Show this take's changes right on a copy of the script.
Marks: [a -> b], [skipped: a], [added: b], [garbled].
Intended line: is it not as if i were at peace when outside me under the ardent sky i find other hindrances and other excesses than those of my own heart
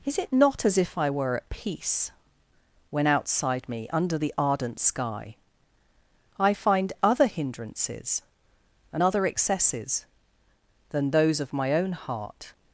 is it not as if i were at peace when outside me under the ardent sky i find other hindrances and other excesses than those of my own heart